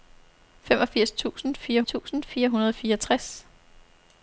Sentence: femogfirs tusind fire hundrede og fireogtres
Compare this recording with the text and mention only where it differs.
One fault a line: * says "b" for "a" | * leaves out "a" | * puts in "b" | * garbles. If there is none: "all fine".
* puts in "tusind fire"